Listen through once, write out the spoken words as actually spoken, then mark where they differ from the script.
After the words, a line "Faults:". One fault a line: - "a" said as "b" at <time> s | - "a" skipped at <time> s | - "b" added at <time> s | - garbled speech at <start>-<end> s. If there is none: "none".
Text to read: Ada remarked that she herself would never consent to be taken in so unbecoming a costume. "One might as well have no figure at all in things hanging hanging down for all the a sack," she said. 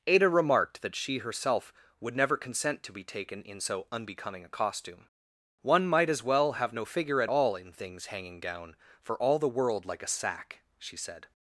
Ada remarked that she herself would never consent to be taken in so unbecoming a costume. "One might as well have no figure at all in things hanging down for all the world like a sack," she said.
Faults:
- "hanging" skipped at 8.4 s
- "world like" added at 9.5 s